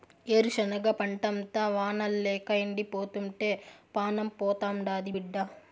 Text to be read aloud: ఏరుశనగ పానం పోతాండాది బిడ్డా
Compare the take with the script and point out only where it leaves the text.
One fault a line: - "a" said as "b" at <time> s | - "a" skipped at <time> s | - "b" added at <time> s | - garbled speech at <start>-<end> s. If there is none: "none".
- "పంటంతా వానల్లేక ఎండిపోతుంటే" added at 1.0 s